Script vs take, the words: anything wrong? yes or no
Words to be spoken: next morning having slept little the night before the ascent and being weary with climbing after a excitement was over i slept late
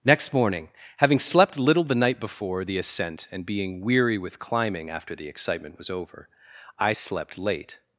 yes